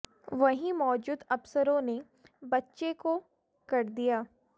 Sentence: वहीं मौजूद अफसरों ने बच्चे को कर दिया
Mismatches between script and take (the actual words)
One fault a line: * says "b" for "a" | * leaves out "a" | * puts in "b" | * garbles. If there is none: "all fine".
all fine